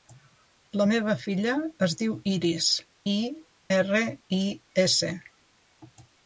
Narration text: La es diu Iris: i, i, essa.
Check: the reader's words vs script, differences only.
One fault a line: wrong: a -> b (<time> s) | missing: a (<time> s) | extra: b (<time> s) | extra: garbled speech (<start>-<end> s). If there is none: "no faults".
extra: meva filla (0.9 s)
extra: erra (3.8 s)